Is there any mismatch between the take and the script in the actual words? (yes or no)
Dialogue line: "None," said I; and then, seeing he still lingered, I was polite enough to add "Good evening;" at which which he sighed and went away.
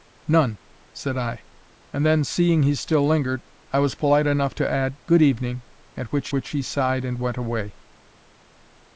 no